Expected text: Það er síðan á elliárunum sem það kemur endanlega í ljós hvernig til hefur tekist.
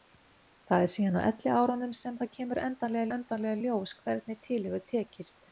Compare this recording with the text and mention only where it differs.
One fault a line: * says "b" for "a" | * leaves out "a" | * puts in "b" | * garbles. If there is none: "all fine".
* puts in "endanlega"